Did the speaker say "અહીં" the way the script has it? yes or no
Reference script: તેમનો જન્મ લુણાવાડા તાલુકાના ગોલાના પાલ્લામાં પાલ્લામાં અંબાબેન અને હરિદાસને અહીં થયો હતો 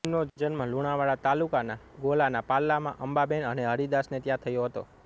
no